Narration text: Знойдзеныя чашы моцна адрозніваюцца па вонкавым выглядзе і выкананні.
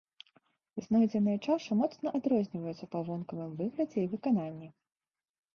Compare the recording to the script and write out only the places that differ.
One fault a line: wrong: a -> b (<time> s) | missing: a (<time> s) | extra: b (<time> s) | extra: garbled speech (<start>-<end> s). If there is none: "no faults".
no faults